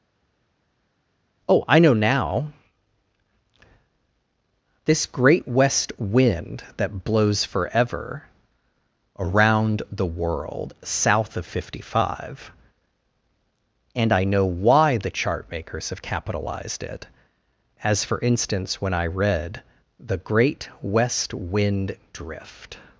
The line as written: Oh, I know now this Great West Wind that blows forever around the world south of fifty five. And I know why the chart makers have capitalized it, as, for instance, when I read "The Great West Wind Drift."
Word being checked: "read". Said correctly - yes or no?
yes